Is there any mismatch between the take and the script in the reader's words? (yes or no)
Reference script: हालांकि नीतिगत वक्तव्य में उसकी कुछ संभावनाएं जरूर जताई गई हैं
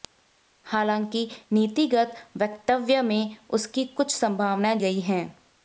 yes